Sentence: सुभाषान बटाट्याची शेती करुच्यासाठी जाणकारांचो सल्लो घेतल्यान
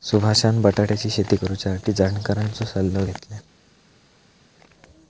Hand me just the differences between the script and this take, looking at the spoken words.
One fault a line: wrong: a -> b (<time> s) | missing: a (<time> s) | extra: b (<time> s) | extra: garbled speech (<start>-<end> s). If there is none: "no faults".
no faults